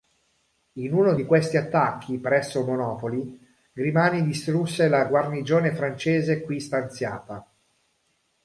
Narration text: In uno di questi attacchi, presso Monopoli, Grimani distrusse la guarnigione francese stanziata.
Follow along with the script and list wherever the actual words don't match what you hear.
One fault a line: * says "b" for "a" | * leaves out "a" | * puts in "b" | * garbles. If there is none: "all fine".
* puts in "qui"